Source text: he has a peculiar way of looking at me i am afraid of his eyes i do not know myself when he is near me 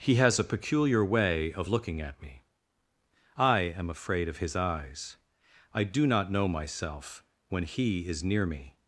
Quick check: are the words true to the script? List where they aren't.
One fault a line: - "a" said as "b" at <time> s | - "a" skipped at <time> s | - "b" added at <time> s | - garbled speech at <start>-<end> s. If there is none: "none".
none